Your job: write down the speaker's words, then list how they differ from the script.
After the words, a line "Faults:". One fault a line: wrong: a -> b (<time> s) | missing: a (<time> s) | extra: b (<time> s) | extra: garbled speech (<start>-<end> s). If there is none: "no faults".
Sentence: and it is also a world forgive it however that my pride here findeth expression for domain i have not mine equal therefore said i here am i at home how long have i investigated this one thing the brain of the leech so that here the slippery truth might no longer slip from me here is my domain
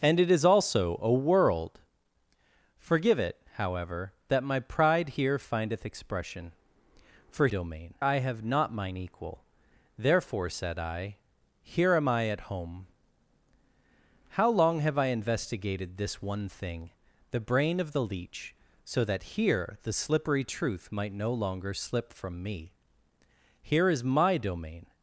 and it is also a world forgive it however that my pride here findeth expression for domain i have not mine equal therefore said i here am i at home how long have i investigated this one thing the brain of the leech so that here the slippery truth might no longer slip from me here is my domain
Faults:
no faults